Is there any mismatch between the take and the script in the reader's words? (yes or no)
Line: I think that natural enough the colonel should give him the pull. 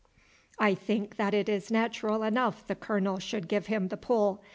yes